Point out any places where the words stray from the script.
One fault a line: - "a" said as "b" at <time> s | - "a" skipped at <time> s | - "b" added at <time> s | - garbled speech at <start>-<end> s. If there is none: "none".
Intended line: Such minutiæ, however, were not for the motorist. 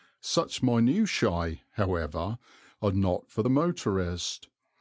- "were" said as "are" at 2.8 s